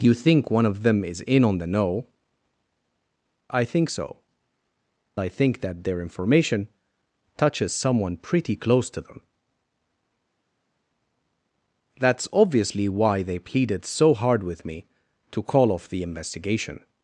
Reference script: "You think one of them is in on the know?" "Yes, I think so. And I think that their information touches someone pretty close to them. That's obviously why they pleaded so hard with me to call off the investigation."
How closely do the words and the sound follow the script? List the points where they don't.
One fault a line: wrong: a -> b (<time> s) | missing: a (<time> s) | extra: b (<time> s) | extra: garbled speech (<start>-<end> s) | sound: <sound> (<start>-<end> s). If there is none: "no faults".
missing: Yes (2.1 s)
missing: And (4.2 s)